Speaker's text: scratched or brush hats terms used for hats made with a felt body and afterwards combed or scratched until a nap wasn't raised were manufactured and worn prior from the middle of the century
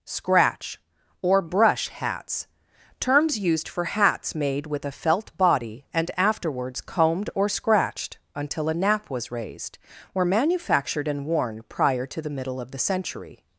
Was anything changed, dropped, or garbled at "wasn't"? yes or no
yes